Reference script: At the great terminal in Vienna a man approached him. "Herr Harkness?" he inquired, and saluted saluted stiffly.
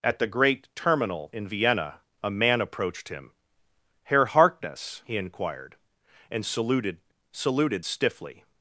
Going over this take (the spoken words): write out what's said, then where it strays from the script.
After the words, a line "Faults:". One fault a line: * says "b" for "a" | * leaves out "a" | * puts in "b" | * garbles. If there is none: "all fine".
At the great terminal in Vienna a man approached him. "Herr Harkness?" he inquired, and saluted saluted stiffly.
Faults:
all fine